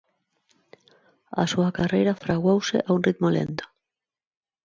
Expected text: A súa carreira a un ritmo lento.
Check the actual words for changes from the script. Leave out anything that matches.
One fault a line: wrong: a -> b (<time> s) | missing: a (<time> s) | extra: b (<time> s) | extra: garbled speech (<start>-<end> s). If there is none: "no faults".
extra: fraguouse (2.2 s)